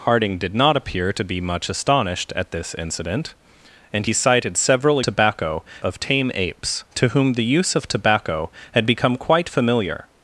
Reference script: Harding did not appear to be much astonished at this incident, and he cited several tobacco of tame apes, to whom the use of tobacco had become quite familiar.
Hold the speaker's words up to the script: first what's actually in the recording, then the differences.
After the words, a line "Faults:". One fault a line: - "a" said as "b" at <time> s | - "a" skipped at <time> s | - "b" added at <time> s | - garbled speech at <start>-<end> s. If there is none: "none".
Harding did not appear to be much astonished at this incident, and he cited several tobacco of tame apes, to whom the use of tobacco had become quite familiar.
Faults:
none